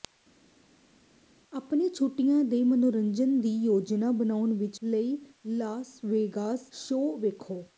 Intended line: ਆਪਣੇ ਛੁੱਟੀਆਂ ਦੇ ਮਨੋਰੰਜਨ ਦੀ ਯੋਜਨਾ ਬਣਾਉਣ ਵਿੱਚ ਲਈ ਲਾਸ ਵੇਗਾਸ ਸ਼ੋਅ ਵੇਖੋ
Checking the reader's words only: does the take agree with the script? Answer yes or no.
yes